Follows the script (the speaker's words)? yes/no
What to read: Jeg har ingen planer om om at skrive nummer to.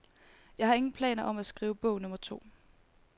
no